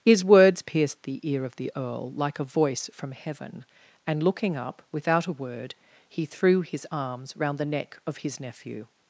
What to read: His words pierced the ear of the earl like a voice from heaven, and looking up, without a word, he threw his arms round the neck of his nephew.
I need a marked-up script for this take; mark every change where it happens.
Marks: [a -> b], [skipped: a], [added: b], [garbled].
His words pierced the ear of the earl like a voice from heaven, and looking up, without a word, he threw his arms round the neck of his nephew.